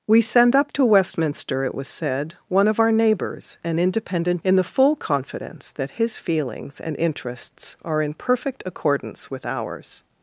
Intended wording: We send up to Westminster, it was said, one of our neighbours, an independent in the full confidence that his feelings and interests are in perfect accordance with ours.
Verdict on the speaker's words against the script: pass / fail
pass